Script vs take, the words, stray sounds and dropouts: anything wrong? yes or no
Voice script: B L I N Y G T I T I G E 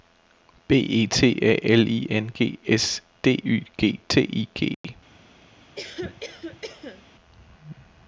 yes